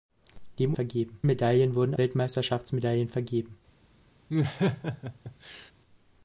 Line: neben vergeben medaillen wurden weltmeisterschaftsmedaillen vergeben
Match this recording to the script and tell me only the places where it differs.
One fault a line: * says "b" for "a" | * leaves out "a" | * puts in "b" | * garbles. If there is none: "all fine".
all fine